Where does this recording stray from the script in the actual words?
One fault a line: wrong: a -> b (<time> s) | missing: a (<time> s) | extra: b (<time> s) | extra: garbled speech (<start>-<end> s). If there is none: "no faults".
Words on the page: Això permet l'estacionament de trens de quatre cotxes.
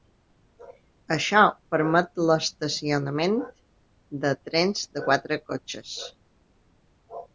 no faults